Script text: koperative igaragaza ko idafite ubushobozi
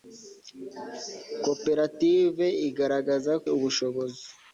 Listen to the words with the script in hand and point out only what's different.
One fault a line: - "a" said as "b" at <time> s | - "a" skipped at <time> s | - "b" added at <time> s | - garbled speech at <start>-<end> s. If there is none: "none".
- "ko idafite" skipped at 3.3 s